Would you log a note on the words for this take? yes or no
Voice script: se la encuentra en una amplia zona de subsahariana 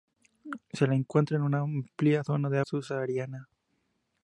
no